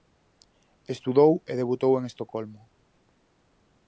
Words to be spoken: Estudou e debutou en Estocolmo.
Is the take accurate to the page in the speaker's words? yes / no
yes